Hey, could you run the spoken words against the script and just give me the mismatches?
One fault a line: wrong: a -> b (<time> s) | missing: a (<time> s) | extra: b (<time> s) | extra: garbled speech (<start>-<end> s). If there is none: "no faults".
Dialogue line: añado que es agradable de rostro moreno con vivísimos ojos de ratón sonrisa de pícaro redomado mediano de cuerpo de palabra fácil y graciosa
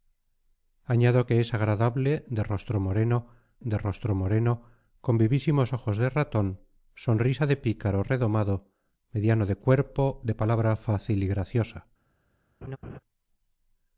extra: de rostro moreno (3.6 s)